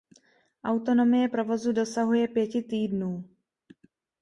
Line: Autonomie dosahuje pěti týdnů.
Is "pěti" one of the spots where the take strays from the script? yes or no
no